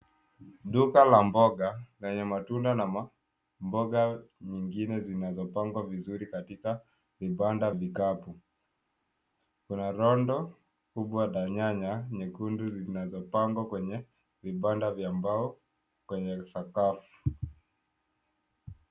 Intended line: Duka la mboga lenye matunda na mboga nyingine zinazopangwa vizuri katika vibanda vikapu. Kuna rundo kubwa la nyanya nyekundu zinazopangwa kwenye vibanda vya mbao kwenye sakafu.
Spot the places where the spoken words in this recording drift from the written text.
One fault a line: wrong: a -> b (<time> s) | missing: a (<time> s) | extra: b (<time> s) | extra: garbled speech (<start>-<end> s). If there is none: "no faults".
no faults